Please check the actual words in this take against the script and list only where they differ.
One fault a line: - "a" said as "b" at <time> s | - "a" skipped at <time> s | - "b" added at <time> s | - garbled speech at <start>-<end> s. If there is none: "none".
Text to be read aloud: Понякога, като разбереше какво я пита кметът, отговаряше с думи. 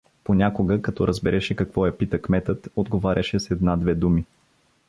- "една две" added at 3.5 s